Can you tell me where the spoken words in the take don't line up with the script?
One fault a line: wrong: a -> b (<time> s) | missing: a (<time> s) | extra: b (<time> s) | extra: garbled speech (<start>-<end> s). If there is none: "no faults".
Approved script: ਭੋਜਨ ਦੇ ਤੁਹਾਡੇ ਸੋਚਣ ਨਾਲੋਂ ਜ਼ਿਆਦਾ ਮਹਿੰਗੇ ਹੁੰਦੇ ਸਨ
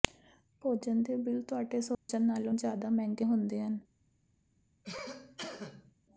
extra: ਬਿੱਲ (1.2 s)
wrong: ਸਨ -> ਹਨ (3.6 s)